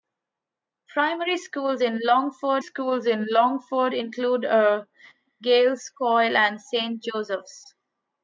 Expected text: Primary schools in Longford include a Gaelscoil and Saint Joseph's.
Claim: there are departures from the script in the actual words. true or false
true